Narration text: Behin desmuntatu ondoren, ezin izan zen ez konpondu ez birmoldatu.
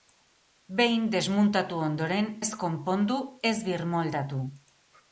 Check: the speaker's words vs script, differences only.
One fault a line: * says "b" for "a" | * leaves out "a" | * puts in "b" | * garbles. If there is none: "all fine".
* leaves out "ezin izan zen"